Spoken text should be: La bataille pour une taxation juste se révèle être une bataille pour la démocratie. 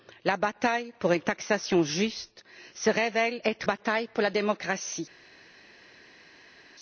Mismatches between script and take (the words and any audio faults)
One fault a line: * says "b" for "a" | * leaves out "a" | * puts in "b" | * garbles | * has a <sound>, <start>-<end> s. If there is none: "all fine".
* leaves out "une"